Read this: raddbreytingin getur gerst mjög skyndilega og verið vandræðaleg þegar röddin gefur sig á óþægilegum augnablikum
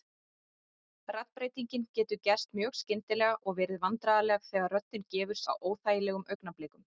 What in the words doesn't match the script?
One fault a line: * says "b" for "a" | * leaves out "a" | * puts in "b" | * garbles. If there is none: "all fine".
* leaves out "sig"